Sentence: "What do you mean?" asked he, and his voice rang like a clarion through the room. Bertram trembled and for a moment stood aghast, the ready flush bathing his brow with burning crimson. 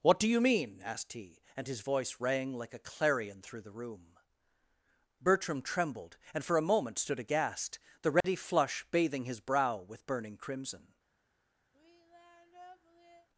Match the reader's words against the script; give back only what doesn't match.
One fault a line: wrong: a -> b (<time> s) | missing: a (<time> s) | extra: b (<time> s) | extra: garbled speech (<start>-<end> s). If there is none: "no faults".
no faults